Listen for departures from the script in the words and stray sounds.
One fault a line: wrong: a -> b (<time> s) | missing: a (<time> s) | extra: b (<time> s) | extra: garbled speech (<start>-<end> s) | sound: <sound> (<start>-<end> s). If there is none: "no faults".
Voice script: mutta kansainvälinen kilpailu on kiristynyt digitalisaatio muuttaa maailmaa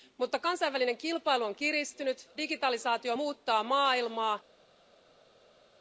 no faults